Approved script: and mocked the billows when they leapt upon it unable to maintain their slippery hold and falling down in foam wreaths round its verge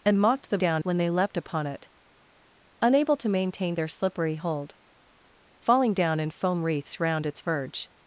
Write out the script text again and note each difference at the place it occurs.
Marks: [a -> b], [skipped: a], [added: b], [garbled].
and mocked the [billows -> down] when they leapt upon it unable to maintain their slippery hold [skipped: and] falling down in foam wreaths round its verge